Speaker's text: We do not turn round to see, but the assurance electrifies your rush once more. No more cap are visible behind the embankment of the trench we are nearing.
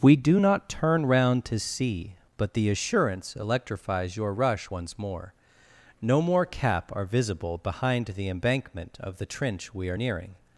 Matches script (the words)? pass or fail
pass